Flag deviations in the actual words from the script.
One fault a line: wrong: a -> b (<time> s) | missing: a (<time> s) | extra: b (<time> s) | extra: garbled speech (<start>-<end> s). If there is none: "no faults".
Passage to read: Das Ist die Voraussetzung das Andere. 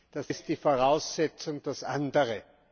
no faults